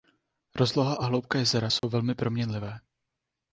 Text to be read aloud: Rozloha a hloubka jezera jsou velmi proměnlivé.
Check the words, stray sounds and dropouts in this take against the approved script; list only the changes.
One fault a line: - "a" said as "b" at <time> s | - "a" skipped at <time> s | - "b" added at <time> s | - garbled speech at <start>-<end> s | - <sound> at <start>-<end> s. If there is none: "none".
- dropout at 1.8-1.8 s